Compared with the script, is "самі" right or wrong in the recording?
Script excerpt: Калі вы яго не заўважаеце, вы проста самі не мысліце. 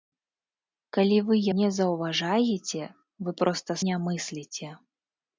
wrong